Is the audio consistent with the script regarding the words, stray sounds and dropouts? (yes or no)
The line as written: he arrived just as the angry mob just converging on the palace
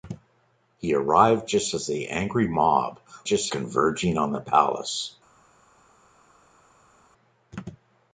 yes